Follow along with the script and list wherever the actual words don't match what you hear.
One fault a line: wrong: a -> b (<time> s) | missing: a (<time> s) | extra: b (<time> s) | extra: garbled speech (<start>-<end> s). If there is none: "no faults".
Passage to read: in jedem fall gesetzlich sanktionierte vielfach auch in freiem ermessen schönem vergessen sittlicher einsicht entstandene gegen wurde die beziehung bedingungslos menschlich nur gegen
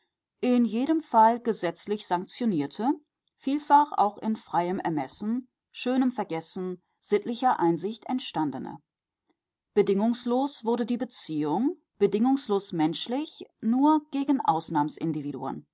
wrong: gegen -> bedingungslos (9.7 s)